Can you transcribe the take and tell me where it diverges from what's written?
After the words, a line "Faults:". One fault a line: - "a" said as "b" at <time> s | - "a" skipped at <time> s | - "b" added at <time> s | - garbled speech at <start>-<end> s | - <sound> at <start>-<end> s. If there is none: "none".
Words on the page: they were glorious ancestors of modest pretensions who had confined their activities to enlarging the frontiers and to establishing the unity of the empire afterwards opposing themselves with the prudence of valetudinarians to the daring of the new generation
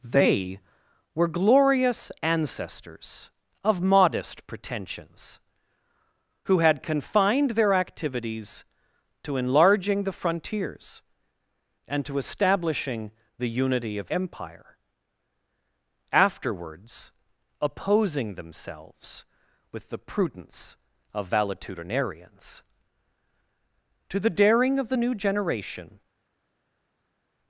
they were glorious ancestors of modest pretensions who had confined their activities to enlarging the frontiers and to establishing the unity of empire afterwards opposing themselves with the prudence of valetudinarians to the daring of the new generation
Faults:
- "the" skipped at 14.1 s